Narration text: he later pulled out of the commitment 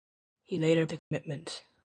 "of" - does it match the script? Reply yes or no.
no